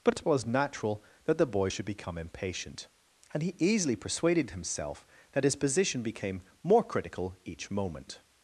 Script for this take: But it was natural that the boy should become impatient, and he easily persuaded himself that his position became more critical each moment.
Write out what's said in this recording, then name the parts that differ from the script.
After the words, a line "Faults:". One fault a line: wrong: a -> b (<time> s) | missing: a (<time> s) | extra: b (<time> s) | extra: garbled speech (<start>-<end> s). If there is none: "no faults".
But it was natural that the boy should become impatient, and he easily persuaded himself that his position became more critical each moment.
Faults:
no faults